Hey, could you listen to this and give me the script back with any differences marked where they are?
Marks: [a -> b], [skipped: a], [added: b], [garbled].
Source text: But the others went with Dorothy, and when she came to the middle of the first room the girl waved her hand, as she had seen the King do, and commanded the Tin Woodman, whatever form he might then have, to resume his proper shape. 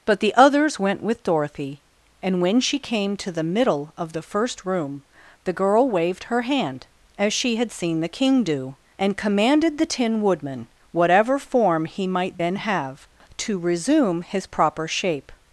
But the others went with Dorothy, and when she came to the middle of the first room the girl waved her hand, as she had seen the King do, and commanded the Tin Woodman, whatever form he might then have, to resume his proper shape.